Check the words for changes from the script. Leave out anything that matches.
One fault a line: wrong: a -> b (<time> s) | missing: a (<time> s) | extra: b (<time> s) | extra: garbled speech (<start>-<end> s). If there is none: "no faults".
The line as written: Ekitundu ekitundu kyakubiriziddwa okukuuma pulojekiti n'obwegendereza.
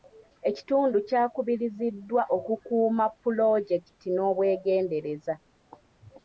missing: ekitundu (1.0 s)